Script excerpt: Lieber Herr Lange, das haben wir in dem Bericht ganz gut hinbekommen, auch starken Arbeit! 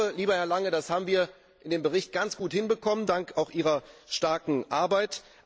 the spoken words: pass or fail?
fail